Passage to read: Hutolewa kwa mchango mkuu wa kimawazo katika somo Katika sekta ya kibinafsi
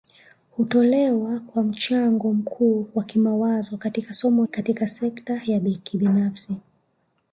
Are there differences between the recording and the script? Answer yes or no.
no